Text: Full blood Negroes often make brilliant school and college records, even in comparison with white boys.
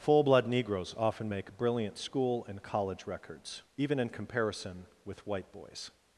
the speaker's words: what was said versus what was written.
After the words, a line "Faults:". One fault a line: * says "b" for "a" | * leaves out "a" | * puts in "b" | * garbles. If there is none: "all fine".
Full blood Negroes often make brilliant school and college records, even in comparison with white boys.
Faults:
all fine